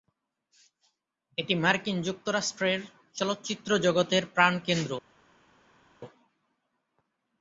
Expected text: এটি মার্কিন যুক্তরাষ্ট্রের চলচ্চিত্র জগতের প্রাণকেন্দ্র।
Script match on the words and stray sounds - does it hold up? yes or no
yes